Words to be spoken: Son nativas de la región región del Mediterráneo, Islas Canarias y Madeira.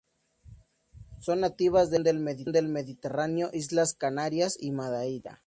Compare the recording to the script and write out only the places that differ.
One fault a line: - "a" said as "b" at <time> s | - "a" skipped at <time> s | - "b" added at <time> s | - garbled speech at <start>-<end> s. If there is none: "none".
- "región" skipped at 2.5 s